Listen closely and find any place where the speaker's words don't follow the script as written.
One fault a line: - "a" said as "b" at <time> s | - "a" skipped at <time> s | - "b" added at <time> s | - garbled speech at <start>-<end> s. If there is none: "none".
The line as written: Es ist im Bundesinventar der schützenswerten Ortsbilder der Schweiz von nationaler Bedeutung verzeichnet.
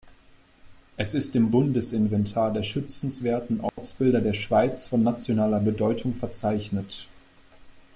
none